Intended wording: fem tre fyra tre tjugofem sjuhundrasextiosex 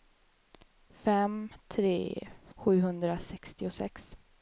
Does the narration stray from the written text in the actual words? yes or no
yes